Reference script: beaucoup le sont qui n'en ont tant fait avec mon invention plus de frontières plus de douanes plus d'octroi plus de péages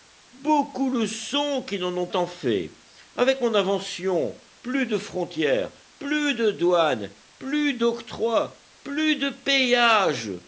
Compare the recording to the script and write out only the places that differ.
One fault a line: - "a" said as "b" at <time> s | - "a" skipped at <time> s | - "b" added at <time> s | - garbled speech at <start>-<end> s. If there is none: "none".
none